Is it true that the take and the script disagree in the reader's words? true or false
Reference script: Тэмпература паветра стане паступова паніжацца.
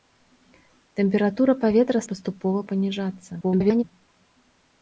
true